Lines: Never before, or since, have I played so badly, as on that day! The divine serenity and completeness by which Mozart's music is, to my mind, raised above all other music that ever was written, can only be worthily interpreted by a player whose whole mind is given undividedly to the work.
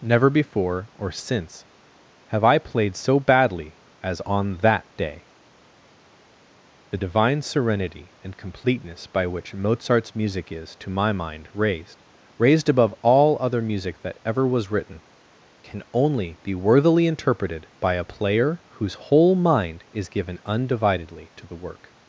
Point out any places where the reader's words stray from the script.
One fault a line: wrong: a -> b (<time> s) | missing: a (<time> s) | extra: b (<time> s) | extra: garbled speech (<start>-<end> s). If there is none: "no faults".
extra: raised (12.4 s)